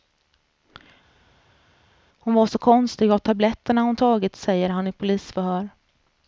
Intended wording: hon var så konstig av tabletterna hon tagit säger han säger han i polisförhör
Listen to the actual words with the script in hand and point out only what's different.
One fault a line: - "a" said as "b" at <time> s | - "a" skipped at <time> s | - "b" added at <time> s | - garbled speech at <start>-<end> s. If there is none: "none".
- "säger han" skipped at 4.9 s